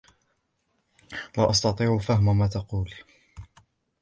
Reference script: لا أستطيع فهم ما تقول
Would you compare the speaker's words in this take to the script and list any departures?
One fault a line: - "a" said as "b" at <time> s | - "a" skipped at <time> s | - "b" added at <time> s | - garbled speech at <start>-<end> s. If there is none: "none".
none